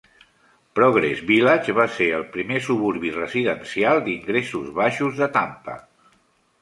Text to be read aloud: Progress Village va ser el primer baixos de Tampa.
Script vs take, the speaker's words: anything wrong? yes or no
yes